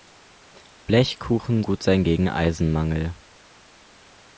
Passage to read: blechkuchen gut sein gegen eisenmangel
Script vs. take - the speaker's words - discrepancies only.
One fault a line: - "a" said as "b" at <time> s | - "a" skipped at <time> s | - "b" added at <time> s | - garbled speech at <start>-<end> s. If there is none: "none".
none